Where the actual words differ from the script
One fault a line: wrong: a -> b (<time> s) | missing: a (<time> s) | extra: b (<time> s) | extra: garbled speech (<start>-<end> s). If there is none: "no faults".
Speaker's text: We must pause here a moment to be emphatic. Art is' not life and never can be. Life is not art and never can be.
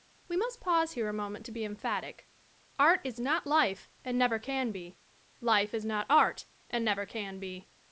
no faults